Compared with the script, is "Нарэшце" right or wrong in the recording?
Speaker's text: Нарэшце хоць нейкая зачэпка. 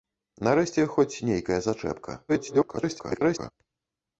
right